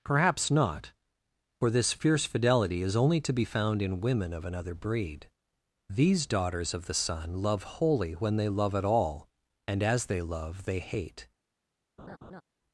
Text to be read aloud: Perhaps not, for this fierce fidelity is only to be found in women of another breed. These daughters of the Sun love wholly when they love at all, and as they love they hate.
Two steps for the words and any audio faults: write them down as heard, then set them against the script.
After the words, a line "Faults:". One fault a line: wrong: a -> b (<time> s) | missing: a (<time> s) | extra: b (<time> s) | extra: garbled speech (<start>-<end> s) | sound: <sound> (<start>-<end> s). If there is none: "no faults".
Perhaps not, for this fierce fidelity is only to be found in women of another breed. These daughters of the Sun love wholly when they love at all, and as they love they hate.
Faults:
sound: laugh (12.0-12.4 s)